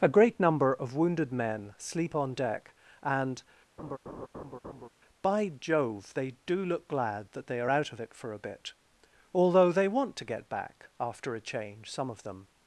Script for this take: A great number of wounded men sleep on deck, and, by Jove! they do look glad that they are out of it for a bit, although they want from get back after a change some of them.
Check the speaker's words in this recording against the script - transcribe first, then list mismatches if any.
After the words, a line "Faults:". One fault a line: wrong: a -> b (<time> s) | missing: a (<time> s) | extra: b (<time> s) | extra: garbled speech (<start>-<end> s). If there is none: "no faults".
A great number of wounded men sleep on deck, and, by Jove! they do look glad that they are out of it for a bit, although they want to get back after a change some of them.
Faults:
wrong: from -> to (10.2 s)